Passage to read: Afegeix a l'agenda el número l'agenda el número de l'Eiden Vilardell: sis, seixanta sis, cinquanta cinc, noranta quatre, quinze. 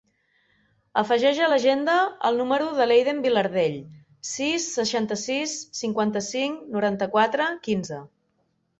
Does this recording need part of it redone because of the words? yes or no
yes